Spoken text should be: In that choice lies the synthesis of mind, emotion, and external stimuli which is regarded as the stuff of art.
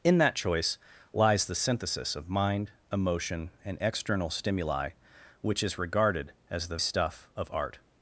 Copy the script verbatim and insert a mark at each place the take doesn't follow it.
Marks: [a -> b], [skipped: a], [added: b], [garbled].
In that choice lies the synthesis of mind, emotion, and external stimuli which is regarded as the stuff of art.